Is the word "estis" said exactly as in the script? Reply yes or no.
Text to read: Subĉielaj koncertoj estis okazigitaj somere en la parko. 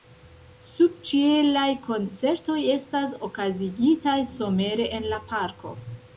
no